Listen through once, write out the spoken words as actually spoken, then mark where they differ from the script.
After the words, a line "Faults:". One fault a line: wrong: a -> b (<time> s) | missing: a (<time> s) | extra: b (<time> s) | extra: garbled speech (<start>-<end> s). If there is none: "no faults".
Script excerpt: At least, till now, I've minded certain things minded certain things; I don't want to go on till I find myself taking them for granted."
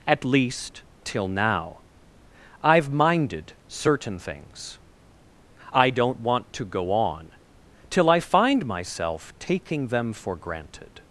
At least, till now, I've minded certain things; I don't want to go on till I find myself taking them for granted."
Faults:
missing: minded certain things (4.8 s)